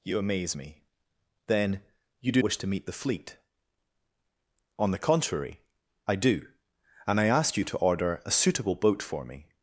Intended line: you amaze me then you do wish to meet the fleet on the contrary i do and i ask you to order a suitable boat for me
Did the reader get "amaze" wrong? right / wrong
right